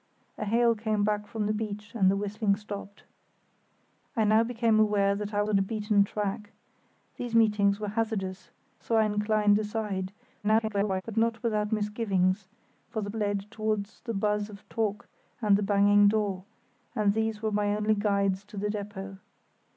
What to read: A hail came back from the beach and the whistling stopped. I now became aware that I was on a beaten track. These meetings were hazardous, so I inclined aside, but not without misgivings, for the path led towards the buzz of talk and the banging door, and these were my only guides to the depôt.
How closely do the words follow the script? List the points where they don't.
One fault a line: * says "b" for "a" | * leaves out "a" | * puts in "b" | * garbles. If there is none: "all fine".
* leaves out "was"
* garbles
* leaves out "path"